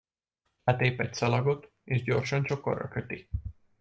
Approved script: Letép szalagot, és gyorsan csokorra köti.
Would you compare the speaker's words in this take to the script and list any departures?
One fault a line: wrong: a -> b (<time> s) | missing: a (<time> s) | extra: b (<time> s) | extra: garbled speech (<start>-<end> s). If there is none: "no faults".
extra: egy (1.0 s)